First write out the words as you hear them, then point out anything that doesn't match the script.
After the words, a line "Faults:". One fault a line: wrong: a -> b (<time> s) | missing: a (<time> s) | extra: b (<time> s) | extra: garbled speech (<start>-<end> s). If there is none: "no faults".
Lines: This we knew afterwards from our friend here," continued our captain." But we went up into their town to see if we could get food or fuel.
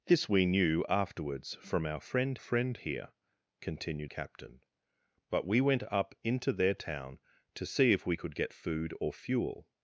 This we knew afterwards from our friend friend here," continued captain." But we went up into their town to see if we could get food or fuel.
Faults:
extra: friend (2.4 s)
missing: our (4.1 s)